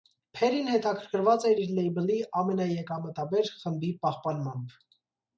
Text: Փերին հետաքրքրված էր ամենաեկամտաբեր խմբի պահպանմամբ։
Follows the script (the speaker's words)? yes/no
no